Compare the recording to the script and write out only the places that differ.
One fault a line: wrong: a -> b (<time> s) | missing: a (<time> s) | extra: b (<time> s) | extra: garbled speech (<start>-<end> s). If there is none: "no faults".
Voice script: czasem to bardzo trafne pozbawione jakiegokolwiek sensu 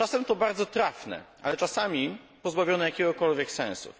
extra: ale czasami (1.4 s)